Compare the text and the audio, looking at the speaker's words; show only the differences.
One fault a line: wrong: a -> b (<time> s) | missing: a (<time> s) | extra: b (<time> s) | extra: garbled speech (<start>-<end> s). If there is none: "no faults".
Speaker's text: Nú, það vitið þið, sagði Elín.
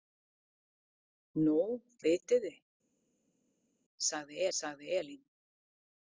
missing: það (1.6 s)
extra: sagði (4.6 s)